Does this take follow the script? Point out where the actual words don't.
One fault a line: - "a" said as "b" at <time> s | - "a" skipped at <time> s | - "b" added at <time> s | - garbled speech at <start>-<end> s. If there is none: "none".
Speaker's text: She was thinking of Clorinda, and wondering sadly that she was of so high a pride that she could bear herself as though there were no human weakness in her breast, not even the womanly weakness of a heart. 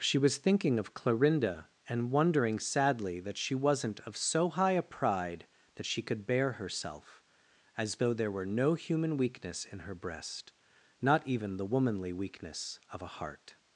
- "was" said as "wasn't" at 3.5 s